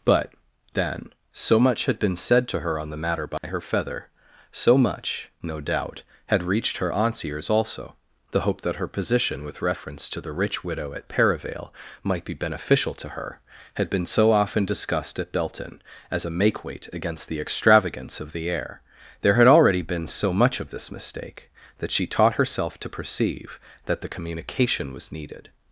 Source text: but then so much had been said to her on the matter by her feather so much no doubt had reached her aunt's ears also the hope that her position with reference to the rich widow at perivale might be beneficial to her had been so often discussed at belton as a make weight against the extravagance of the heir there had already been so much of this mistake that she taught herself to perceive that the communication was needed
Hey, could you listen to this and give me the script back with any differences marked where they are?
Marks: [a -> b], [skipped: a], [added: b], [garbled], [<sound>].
but then so much had been said to her on the matter by [dropout] her feather so much no doubt had reached her aunt's ears also the hope that her position with reference to the rich widow at perivale might be beneficial to her had been so often discussed at belton as a make weight against the extravagance of the heir there had already been so much of this mistake that she taught herself to perceive that the communication was needed